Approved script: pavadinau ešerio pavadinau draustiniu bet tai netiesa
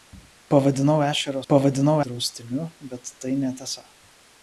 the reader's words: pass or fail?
pass